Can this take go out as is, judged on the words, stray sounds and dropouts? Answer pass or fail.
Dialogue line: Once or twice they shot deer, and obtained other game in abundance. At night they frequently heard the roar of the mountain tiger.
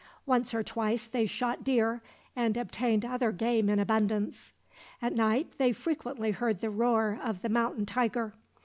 pass